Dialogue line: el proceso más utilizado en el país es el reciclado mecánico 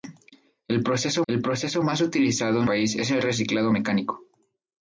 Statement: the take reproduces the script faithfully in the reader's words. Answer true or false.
false